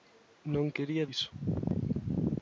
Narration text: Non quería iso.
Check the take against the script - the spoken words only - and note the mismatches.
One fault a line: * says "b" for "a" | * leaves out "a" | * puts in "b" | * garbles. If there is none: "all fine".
all fine